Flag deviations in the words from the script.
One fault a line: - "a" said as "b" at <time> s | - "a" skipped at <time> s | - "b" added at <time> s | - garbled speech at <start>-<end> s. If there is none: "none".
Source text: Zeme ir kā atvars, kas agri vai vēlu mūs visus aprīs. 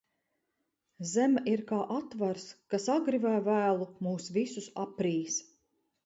none